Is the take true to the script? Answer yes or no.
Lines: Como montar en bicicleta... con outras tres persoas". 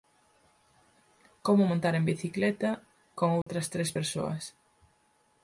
yes